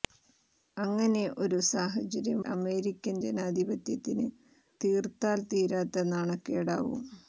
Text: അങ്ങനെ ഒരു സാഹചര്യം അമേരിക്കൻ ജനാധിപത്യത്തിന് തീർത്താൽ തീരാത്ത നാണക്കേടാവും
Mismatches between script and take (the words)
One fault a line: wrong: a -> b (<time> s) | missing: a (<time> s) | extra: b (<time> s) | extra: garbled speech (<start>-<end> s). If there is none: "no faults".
no faults